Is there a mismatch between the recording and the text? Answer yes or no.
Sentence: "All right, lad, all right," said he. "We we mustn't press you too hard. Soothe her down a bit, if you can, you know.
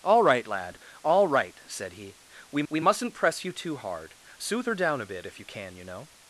no